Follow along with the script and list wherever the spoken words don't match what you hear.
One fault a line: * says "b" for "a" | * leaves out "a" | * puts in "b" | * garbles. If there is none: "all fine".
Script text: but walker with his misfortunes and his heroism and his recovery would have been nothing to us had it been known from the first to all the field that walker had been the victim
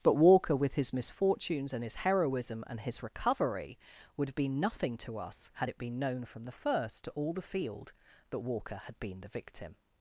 all fine